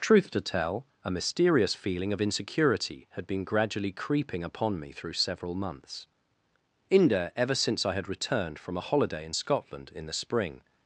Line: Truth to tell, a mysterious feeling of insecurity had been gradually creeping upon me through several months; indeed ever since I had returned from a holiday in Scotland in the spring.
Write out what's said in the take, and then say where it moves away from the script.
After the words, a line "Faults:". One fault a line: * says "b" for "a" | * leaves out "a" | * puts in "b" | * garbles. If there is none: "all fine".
Truth to tell, a mysterious feeling of insecurity had been gradually creeping upon me through several months; inde ever since I had returned from a holiday in Scotland in the spring.
Faults:
* says "inde" for "indeed"